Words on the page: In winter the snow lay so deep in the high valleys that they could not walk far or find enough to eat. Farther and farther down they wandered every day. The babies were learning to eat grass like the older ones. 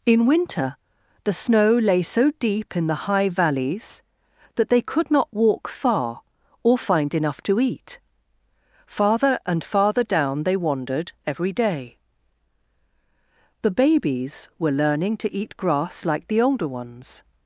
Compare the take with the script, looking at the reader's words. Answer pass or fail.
pass